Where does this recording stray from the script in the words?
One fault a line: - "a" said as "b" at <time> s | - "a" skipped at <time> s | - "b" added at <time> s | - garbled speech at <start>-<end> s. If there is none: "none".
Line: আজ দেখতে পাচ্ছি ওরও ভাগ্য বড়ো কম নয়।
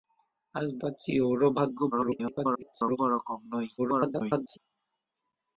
- "দেখতে" skipped at 0.7 s
- garbled speech at 1.9-3.0 s
- garbled speech at 3.8-4.6 s